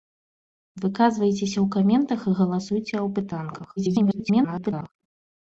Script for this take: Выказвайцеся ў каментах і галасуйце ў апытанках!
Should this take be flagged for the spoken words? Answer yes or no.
yes